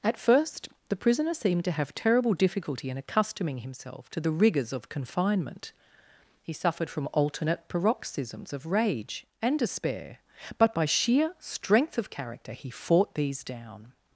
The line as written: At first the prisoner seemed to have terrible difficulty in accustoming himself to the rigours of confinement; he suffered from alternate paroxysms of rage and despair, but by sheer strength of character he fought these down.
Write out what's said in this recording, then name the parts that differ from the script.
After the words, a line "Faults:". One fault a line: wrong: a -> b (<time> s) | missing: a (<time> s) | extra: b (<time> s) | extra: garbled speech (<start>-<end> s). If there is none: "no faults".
At first the prisoner seemed to have terrible difficulty in accustoming himself to the rigours of confinement; he suffered from alternate paroxysms of rage and despair, but by sheer strength of character he fought these down.
Faults:
no faults